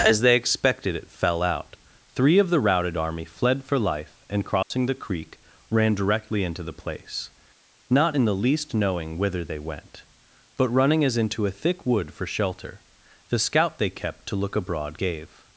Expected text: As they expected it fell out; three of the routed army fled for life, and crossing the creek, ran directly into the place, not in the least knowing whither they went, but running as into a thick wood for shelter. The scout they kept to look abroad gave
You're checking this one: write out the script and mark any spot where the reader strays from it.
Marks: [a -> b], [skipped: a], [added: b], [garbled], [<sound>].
As they expected it fell out; three of the routed army fled for life, and crossing [dropout] the creek, ran directly into the place, not in the least knowing whither they went, but running as into a thick wood for shelter. The scout they kept to look abroad gave